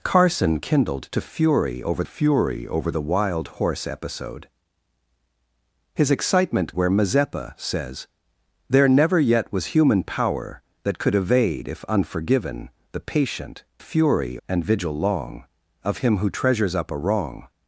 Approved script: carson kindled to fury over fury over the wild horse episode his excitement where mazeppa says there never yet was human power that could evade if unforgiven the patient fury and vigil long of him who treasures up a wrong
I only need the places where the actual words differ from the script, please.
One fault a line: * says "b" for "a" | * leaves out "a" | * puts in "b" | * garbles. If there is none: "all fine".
all fine